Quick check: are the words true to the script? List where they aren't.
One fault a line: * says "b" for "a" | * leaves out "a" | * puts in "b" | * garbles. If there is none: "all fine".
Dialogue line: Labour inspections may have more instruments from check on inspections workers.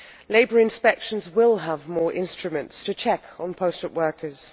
* says "will" for "may"
* says "to" for "from"
* says "posted" for "inspections"